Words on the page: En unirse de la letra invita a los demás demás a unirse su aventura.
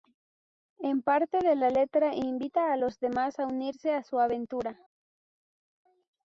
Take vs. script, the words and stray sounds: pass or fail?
fail